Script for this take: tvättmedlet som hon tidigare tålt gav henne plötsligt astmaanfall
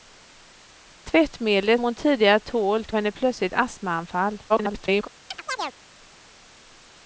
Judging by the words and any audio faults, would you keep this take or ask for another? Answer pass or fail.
fail